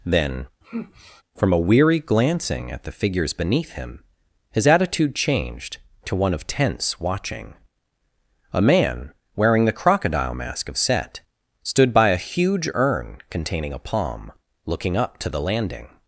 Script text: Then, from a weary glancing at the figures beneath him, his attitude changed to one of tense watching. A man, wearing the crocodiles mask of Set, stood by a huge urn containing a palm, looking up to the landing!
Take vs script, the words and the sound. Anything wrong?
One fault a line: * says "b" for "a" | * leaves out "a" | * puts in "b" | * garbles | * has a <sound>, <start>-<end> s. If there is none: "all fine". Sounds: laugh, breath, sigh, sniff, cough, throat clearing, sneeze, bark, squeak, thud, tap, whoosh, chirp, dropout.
* has a sigh, 0.6-1.2 s
* says "crocodile" for "crocodiles"